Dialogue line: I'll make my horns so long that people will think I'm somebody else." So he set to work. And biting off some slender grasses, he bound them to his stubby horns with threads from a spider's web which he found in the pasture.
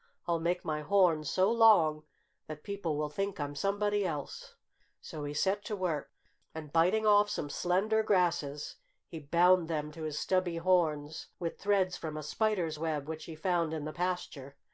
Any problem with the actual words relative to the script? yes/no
no